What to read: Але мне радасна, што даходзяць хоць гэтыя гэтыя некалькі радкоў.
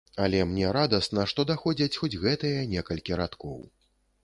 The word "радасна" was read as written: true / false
true